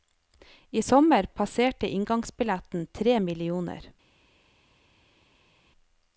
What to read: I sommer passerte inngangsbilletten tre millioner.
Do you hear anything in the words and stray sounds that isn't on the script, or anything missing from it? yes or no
no